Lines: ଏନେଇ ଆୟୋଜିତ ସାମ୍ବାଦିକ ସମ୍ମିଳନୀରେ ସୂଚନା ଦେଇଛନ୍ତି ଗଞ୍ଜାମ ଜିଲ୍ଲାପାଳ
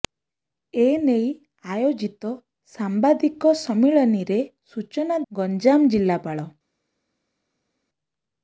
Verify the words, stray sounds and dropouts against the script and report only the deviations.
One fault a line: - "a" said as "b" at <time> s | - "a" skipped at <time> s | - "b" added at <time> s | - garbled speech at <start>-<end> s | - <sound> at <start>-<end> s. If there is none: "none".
- "ଦେଇଛନ୍ତି" skipped at 5.2 s